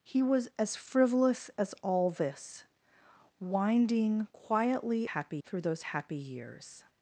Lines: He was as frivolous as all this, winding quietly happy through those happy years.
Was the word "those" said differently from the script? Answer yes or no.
no